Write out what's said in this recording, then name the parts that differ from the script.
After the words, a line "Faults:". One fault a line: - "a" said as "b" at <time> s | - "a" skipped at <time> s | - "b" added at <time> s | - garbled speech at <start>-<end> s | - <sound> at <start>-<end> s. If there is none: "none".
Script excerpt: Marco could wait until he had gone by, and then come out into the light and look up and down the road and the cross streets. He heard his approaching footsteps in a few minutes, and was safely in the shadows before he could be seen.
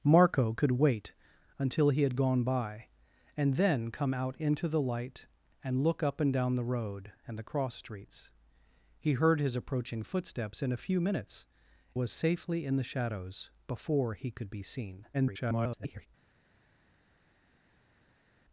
Marco could wait until he had gone by, and then come out into the light and look up and down the road and the cross streets. He heard his approaching footsteps in a few minutes, was safely in the shadows before he could be seen. [garbled]
Faults:
- "and" skipped at 11.4 s
- garbled speech at 15.1-16.1 s